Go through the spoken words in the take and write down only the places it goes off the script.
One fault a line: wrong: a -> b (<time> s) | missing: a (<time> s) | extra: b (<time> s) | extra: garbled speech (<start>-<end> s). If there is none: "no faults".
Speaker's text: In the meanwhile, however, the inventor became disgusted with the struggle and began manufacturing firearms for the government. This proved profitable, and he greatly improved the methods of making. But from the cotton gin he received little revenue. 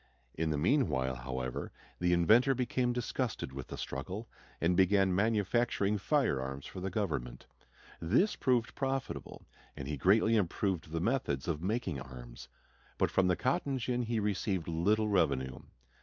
extra: arms (12.0 s)